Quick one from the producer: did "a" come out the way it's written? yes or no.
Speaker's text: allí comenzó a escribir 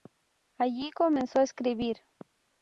yes